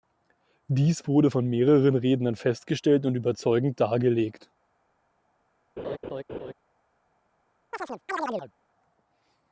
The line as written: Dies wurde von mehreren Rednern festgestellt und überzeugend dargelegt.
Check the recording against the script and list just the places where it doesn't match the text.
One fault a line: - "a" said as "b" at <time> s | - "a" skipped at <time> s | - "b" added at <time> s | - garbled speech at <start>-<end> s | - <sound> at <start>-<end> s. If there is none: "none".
- laugh at 5.8-6.5 s
- chirp at 7.7-8.5 s